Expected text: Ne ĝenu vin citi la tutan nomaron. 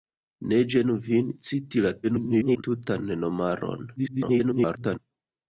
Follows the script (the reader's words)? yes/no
no